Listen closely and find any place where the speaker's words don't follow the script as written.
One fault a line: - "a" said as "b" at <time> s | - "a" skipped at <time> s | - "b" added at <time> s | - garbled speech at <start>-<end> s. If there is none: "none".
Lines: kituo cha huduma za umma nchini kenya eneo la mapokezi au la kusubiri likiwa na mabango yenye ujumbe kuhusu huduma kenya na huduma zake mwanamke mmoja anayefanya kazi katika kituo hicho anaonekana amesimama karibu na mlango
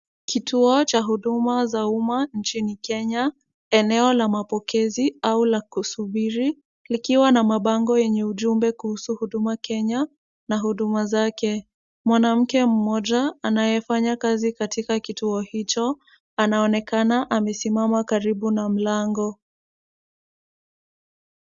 none